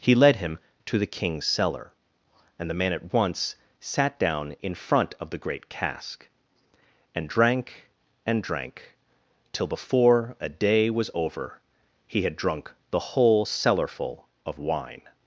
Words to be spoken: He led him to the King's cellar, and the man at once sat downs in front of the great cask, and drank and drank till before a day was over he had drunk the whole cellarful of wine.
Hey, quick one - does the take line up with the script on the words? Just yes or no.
no